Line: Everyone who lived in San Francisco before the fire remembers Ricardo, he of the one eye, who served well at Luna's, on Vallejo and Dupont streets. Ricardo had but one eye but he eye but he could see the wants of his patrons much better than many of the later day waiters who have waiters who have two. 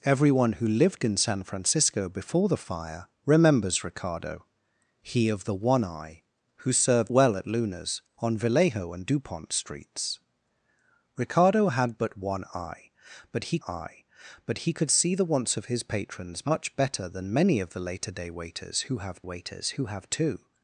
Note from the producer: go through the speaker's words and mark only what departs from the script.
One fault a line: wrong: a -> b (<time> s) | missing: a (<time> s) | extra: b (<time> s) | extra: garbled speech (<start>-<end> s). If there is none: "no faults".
no faults